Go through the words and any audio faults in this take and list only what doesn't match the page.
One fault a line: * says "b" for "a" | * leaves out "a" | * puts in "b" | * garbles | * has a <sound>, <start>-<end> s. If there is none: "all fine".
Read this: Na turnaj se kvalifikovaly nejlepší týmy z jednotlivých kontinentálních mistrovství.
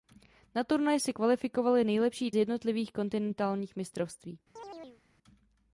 * leaves out "týmy"
* has a chirp, 4.6-5.0 s